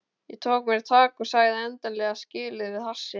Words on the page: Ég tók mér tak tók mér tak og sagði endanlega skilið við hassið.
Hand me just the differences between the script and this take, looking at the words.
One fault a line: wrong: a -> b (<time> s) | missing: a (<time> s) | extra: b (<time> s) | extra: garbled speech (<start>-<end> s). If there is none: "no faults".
missing: tók mér tak (1.2 s)